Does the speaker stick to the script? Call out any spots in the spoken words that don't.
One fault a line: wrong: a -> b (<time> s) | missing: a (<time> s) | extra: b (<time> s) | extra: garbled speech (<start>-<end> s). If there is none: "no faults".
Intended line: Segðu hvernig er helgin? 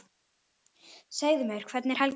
extra: mér (1.5 s)